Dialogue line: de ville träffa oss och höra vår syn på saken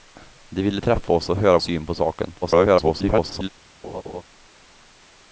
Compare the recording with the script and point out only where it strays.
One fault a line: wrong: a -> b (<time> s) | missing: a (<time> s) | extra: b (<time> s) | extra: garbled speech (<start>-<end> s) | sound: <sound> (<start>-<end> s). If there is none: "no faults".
missing: vår (1.6 s)
extra: garbled speech (2.4-3.5 s)
sound: laugh (3.8-4.2 s)